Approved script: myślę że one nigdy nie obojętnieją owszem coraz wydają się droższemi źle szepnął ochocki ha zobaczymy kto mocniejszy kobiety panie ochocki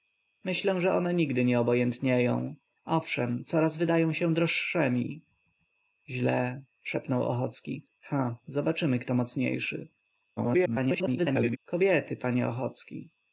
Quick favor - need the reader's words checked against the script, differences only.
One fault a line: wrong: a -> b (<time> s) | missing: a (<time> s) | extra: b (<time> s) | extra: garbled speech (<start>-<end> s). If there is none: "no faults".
extra: garbled speech (10.4-11.6 s)